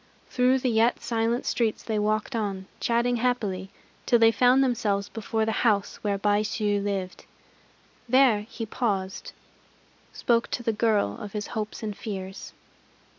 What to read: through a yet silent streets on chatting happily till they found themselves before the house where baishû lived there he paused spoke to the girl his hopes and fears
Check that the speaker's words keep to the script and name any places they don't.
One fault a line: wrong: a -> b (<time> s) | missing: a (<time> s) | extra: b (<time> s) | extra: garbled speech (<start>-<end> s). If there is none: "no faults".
wrong: a -> the (0.6 s)
extra: they walked (1.8 s)
extra: of (11.2 s)